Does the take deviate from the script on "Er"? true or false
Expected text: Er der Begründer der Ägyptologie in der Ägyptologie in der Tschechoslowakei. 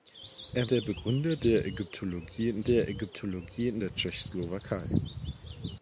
false